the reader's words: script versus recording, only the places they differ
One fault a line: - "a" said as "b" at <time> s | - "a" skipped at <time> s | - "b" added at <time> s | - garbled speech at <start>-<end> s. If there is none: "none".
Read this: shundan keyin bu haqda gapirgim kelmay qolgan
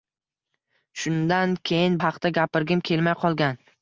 - "bu" skipped at 2.0 s